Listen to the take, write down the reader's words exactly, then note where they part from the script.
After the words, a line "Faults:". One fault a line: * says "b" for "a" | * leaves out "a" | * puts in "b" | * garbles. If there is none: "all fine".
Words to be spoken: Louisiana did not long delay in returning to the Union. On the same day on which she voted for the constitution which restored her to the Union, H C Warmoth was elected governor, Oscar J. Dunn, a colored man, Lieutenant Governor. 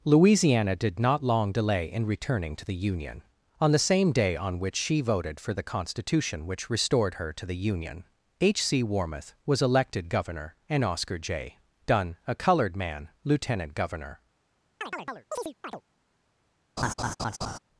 Louisiana did not long delay in returning to the Union. On the same day on which she voted for the constitution which restored her to the Union, H C Warmoth was elected governor, and Oscar J. Dunn, a colored man, Lieutenant Governor.
Faults:
* puts in "and"